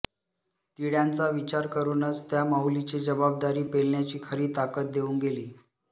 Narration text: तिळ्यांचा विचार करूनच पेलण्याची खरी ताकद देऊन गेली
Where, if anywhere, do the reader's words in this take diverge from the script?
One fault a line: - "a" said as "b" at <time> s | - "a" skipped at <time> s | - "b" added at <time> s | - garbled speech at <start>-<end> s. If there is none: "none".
- "त्या माऊलीची जबाबदारी" added at 2.3 s